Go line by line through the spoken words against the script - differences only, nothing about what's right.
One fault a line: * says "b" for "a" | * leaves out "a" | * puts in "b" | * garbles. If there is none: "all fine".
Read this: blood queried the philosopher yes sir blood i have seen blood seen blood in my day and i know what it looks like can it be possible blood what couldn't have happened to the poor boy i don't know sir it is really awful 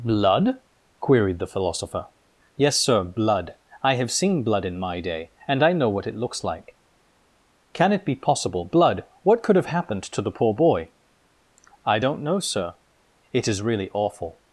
* leaves out "seen blood"
* says "could" for "couldn't"